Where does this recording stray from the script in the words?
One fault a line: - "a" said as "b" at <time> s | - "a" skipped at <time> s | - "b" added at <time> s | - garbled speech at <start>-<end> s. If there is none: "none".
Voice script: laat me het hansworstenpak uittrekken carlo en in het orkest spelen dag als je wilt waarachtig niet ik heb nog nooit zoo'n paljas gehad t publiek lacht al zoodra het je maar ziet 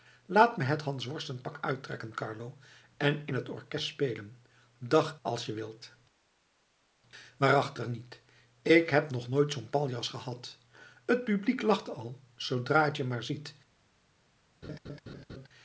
none